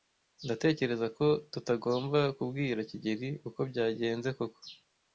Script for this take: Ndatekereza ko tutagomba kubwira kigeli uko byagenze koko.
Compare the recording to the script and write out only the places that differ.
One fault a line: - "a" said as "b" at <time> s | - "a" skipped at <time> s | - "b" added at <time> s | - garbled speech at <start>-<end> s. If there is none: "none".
none